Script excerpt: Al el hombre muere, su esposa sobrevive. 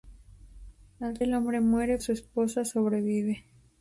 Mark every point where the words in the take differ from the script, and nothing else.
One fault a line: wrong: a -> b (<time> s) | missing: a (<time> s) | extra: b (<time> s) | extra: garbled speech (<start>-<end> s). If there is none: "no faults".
no faults